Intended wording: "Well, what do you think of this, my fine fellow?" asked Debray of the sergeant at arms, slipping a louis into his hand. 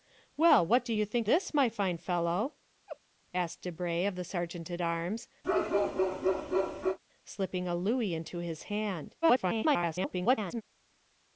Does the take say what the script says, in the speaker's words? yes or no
no